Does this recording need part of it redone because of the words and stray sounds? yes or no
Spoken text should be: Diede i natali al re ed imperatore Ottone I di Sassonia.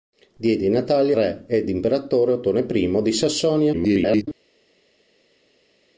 yes